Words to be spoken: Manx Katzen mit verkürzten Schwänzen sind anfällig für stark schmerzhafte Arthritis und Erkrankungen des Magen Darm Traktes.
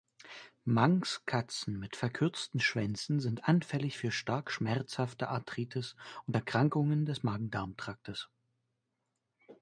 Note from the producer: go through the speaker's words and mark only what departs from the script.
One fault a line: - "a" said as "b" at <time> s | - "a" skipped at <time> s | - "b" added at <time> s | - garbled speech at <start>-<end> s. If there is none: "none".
none